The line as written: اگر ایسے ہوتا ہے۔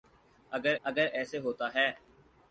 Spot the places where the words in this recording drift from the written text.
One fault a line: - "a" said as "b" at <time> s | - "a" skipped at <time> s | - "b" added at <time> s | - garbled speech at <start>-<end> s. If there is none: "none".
- "اگر" added at 0.8 s